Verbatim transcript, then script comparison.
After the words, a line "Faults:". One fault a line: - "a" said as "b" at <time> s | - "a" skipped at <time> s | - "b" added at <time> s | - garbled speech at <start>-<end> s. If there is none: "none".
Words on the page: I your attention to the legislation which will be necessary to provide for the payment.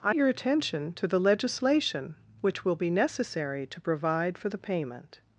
I your attention to the legislation which will be necessary to provide for the payment.
Faults:
none